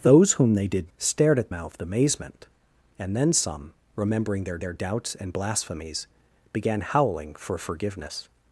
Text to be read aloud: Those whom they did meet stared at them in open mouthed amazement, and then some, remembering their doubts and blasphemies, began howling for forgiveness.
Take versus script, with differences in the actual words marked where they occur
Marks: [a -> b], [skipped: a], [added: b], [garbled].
Those whom they did [skipped: meet] stared at [skipped: them in open] mouthed amazement, and then some, remembering their [added: their] doubts and blasphemies, began howling for forgiveness.